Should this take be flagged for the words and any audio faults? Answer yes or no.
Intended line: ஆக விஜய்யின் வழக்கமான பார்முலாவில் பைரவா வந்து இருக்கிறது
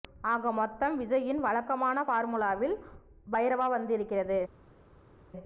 yes